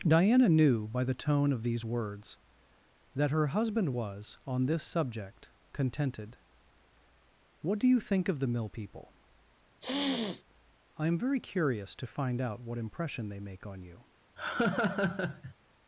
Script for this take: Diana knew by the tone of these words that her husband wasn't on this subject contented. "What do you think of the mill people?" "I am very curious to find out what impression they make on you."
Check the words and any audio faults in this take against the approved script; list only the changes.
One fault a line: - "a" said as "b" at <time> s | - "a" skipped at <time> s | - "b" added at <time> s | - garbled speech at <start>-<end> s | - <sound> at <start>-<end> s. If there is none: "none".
- "wasn't" said as "was" at 3.9 s
- sniff at 9.8-10.4 s
- laugh at 14.4-15.5 s